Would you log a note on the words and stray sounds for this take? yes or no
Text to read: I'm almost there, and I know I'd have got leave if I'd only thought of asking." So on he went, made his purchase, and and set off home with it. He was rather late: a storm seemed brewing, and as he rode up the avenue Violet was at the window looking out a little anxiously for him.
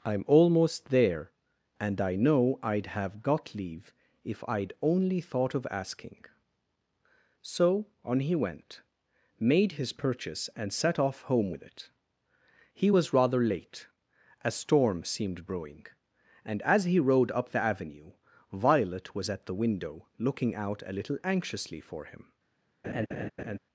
yes